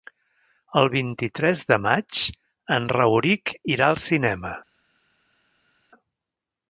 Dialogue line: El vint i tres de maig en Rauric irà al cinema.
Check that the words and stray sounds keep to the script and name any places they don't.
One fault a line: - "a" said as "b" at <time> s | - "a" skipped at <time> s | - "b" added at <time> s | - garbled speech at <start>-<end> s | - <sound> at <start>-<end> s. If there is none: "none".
none